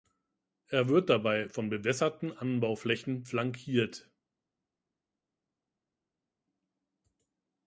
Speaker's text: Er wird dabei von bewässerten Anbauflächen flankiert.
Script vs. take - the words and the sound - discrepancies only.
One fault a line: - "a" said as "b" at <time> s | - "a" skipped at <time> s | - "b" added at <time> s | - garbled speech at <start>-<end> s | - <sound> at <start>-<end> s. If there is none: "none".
none